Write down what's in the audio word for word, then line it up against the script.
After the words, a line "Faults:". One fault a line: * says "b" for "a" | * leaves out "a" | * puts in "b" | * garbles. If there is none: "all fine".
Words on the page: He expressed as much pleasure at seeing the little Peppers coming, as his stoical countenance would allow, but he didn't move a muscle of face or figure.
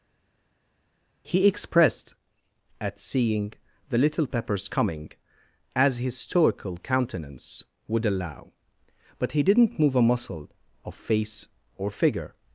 He expressed at seeing the little Peppers coming, as his stoical countenance would allow, but he didn't move a muscle of face or figure.
Faults:
* leaves out "as much pleasure"